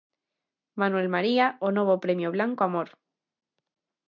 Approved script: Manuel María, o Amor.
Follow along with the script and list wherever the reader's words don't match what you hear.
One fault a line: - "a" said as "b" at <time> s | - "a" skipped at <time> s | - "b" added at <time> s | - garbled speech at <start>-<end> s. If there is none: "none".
- "novo premio Blanco" added at 1.8 s